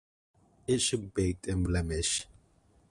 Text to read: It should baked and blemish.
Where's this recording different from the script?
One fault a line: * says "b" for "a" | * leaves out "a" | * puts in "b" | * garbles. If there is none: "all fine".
all fine